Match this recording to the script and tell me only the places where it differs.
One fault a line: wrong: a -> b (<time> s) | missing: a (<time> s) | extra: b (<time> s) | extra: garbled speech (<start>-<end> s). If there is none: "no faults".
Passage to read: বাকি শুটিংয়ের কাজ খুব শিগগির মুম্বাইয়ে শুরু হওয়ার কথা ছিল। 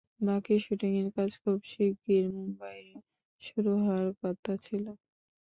no faults